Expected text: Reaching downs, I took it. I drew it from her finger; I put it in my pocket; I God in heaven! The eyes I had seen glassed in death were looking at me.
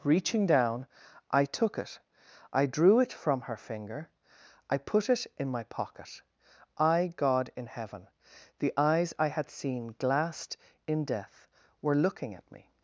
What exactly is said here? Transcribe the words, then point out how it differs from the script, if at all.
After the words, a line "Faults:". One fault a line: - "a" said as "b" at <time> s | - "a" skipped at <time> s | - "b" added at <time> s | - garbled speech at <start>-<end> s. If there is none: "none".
Reaching down, I took it. I drew it from her finger; I put it in my pocket; I God in heaven! The eyes I had seen glassed in death were looking at me.
Faults:
- "downs" said as "down" at 0.5 s